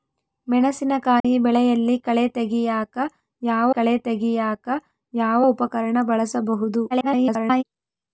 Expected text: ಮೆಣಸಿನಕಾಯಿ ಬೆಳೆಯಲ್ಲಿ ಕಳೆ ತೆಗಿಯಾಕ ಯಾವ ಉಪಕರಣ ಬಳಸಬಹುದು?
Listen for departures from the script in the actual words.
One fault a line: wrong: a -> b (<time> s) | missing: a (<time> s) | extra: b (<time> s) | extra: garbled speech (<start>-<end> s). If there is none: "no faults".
extra: ಕಳೆ ತೆಗಿಯಾಕ ಯಾವ (3.7 s)
extra: garbled speech (6.9-7.6 s)